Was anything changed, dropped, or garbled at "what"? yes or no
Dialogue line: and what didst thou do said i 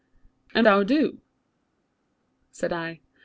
yes